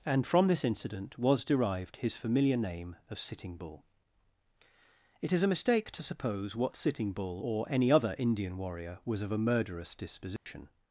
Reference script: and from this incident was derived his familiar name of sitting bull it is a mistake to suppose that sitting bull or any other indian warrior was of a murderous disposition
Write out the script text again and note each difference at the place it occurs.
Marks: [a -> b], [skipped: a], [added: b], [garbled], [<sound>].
and from this incident was derived his familiar name of sitting bull it is a mistake to suppose [that -> what] sitting bull or any other indian warrior was of a murderous disposition [dropout]